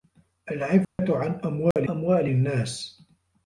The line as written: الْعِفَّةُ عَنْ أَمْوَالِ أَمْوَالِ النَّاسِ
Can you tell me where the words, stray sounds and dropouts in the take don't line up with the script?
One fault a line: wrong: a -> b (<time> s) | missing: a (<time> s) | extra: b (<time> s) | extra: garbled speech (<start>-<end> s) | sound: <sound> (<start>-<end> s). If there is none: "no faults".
sound: dropout (0.8-1.0 s)
sound: dropout (1.7-1.8 s)